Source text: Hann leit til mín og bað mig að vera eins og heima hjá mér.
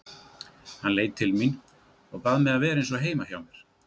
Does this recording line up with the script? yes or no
yes